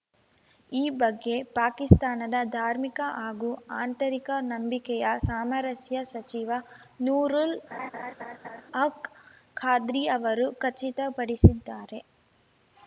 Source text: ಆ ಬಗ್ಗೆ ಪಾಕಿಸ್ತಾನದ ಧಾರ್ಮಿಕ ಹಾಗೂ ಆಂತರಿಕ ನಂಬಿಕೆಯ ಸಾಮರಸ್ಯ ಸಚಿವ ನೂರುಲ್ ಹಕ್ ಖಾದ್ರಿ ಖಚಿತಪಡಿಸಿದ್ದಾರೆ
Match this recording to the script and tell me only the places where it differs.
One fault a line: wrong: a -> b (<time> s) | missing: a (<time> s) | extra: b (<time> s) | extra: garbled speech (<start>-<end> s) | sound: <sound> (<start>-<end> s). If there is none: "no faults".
wrong: ಆ -> ಈ (0.7 s)
sound: laugh (7.7-8.6 s)
extra: ಅವರು (10.2 s)